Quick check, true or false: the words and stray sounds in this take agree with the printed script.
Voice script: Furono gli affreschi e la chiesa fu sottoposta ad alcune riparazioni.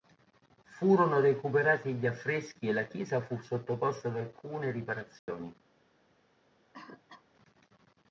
false